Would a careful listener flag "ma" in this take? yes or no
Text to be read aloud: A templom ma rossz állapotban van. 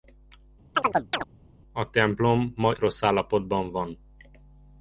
no